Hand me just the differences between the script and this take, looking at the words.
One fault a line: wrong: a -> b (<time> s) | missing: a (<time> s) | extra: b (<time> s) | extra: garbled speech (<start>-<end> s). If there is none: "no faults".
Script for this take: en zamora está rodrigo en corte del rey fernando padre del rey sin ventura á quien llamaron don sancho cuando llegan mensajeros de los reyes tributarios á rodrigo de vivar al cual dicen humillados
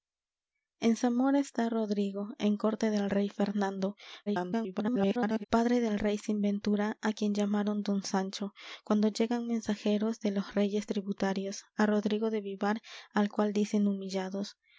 extra: garbled speech (4.3-5.4 s)